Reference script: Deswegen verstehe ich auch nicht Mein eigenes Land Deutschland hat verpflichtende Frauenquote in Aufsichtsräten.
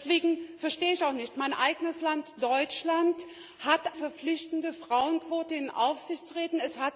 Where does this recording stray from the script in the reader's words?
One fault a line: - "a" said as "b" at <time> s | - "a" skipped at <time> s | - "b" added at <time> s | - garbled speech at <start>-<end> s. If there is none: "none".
none